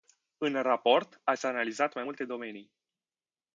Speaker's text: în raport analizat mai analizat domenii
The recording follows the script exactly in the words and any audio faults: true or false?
false